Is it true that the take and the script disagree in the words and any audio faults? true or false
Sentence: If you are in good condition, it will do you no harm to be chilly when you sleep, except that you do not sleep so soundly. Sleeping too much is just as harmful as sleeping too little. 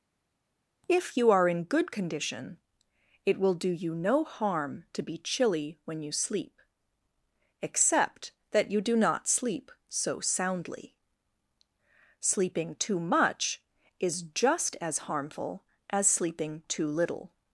false